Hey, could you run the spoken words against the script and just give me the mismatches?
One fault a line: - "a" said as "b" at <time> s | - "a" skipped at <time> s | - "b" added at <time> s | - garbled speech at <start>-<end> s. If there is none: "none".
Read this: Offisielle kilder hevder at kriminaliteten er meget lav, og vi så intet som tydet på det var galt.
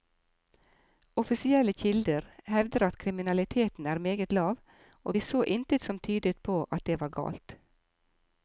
- "at" added at 6.6 s